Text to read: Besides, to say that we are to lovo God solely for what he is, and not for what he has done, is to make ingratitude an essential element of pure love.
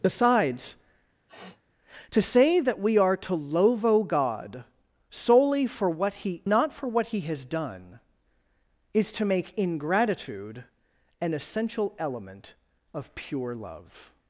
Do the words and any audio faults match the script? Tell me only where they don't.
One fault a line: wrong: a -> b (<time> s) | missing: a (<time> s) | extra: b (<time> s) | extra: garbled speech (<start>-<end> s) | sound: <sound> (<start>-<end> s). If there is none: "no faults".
sound: sniff (1.3-1.6 s)
missing: is and (6.4 s)